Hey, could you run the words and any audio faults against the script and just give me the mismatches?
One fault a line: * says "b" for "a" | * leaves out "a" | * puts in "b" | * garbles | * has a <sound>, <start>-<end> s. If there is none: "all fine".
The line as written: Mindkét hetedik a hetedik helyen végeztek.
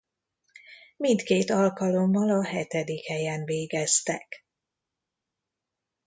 * says "alkalommal" for "hetedik"